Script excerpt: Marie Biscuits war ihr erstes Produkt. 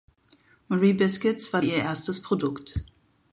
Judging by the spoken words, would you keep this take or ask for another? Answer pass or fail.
pass